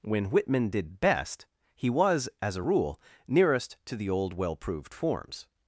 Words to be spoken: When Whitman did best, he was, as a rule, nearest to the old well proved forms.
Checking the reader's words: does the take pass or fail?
pass